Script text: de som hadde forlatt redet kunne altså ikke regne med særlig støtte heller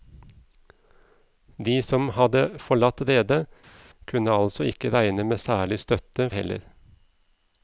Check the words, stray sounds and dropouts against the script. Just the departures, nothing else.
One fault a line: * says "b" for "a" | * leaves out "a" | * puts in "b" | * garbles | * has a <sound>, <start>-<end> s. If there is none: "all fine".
all fine